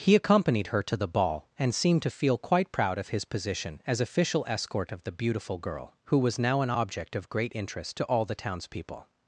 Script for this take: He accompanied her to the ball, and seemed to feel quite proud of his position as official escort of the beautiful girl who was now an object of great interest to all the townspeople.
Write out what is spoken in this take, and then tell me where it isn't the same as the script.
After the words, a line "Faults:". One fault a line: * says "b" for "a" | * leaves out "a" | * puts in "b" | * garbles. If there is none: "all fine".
He accompanied her to the ball, and seemed to feel quite proud of his position as official escort of the beautiful girl who was now an object of great interest to all the townspeople.
Faults:
all fine